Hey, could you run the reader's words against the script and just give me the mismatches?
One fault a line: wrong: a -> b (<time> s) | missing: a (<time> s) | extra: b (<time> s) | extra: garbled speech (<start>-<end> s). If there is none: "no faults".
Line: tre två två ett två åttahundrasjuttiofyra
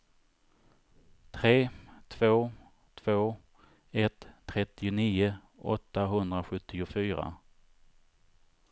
wrong: två -> trettionio (4.4 s)